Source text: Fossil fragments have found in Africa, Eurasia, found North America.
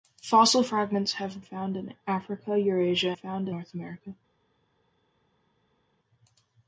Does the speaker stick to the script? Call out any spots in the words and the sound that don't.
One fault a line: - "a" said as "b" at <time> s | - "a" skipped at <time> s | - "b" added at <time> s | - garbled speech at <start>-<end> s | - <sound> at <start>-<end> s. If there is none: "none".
none